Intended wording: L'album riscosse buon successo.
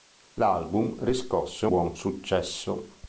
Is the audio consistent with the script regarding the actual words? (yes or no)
yes